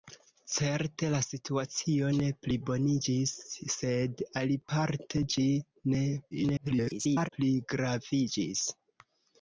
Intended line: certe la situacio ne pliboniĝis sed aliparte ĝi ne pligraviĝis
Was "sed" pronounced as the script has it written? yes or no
yes